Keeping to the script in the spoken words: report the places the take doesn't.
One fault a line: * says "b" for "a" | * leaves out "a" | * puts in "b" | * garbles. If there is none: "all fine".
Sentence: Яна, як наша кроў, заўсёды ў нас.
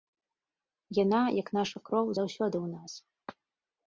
all fine